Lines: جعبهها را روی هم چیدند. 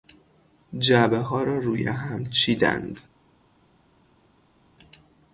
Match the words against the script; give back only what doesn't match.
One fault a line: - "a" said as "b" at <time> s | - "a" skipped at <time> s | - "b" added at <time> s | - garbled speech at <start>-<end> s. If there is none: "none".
none